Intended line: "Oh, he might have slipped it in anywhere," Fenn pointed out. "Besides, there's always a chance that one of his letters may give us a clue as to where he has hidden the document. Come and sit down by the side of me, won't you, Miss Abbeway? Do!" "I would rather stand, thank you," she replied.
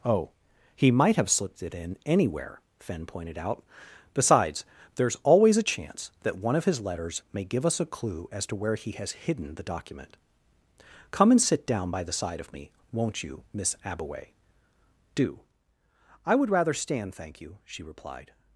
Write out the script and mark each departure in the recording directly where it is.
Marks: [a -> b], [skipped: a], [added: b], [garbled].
"Oh, he might have slipped it in anywhere," Fenn pointed out. "Besides, there's always a chance that one of his letters may give us a clue as to where he has hidden the document. Come and sit down by the side of me, won't you, Miss Abbeway? Do!" "I would rather stand, thank you," she replied.